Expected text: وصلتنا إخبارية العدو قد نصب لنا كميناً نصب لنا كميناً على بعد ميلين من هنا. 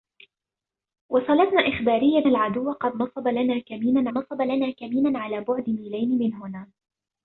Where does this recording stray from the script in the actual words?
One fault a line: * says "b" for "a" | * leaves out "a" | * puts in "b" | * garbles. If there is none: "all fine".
all fine